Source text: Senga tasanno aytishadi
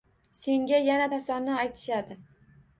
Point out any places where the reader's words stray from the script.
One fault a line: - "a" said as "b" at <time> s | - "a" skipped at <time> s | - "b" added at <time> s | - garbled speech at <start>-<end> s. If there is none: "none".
- "yana" added at 0.9 s